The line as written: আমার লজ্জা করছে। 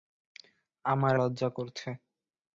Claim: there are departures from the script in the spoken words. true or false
false